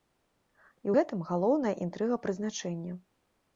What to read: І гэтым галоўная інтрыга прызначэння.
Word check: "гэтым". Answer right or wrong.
right